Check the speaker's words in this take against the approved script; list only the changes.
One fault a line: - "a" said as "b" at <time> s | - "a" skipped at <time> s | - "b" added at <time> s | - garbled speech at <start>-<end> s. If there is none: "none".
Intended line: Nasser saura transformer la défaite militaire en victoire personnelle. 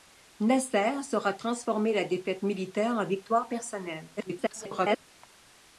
- garbled speech at 4.2-5.0 s